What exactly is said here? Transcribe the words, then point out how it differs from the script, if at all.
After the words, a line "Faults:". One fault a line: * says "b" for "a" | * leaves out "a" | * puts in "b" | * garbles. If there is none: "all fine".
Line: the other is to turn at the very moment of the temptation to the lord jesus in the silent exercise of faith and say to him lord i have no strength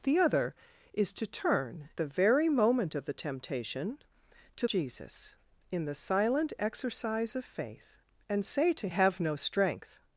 the other is to turn the very moment of the temptation to jesus in the silent exercise of faith and say to have no strength
Faults:
* leaves out "at"
* leaves out "the lord"
* leaves out "him lord i"